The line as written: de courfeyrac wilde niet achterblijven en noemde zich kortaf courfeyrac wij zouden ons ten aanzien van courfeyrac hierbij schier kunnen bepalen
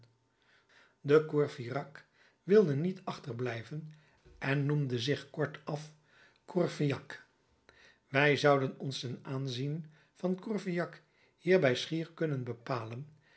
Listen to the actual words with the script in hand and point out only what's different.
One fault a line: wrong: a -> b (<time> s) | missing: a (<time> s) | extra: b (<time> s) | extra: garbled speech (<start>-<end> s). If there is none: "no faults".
no faults